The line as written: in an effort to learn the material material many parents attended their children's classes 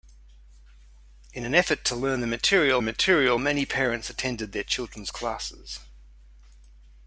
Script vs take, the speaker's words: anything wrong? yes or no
no